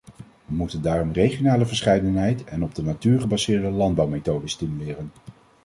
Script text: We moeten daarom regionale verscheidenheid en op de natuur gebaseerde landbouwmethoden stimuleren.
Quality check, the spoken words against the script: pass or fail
pass